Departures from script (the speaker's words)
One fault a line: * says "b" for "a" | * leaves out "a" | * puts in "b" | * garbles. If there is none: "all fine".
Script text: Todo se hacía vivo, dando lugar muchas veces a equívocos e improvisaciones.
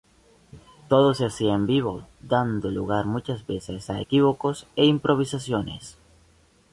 * puts in "en"